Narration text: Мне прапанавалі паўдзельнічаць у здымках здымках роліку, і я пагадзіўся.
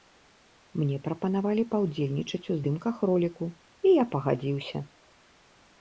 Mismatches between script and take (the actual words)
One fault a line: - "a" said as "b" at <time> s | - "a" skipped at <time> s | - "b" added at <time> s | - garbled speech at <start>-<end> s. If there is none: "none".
- "здымках" skipped at 3.0 s